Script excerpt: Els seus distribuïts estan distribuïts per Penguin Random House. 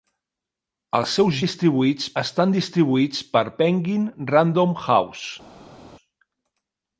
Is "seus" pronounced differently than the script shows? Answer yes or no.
no